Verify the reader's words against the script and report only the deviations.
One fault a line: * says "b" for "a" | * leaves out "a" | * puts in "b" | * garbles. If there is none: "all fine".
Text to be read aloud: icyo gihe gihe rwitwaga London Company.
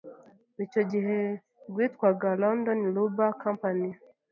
* leaves out "gihe"
* puts in "Rubber"